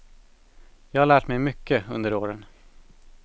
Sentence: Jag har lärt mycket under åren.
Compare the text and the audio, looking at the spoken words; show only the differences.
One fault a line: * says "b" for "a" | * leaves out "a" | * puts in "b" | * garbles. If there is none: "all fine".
* puts in "mig"